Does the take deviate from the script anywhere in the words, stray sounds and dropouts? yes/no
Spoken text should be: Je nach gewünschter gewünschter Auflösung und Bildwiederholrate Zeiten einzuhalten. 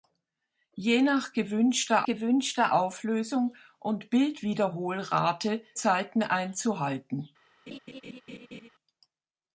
yes